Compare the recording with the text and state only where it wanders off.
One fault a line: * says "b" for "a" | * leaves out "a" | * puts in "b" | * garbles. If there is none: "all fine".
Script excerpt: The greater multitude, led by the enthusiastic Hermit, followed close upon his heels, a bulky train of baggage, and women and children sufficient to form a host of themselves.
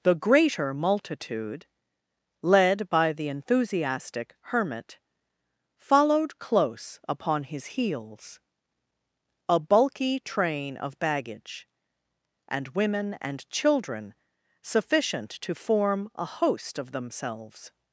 all fine